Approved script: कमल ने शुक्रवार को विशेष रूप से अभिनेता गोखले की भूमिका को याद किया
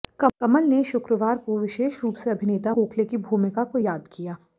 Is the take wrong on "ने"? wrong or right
right